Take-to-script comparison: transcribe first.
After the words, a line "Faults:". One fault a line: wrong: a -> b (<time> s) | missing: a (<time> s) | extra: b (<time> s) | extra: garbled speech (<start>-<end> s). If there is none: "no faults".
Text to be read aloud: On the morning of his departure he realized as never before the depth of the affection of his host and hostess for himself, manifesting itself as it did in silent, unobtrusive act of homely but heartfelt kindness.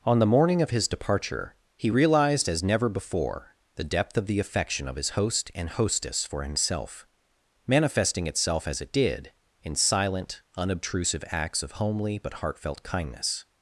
On the morning of his departure he realized as never before the depth of the affection of his host and hostess for himself, manifesting itself as it did in silent, unobtrusive acts of homely but heartfelt kindness.
Faults:
wrong: act -> acts (11.3 s)